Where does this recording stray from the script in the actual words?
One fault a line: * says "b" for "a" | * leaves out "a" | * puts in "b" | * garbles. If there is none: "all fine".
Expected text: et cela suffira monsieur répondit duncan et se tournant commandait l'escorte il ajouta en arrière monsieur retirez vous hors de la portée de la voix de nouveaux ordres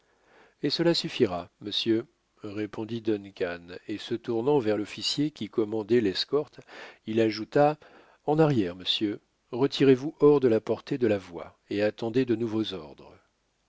* puts in "vers l'officier qui"
* puts in "et attendez"